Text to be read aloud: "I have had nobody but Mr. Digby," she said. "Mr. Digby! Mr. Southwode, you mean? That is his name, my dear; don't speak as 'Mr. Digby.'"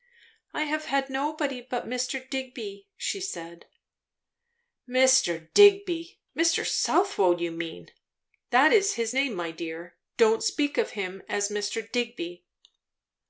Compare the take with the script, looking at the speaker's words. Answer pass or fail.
fail